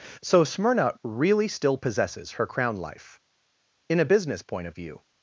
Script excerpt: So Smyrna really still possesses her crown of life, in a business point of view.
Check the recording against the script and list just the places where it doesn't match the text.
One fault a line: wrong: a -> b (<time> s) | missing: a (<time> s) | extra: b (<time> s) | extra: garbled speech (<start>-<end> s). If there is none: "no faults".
missing: of (2.8 s)